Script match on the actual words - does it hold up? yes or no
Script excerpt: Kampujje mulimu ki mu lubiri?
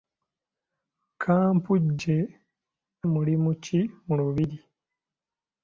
yes